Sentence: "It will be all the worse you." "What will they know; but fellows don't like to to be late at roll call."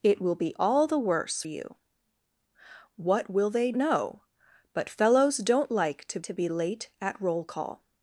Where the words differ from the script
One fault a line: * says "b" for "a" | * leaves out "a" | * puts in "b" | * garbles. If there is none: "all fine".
all fine